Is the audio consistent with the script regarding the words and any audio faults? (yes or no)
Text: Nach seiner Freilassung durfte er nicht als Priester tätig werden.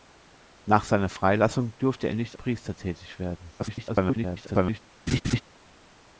no